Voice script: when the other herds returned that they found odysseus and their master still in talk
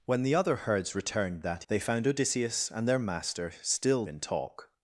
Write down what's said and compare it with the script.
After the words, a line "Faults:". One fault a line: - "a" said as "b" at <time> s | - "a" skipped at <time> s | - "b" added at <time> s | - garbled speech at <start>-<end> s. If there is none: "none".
when the other herds returned that they found odysseus and their master still in talk
Faults:
none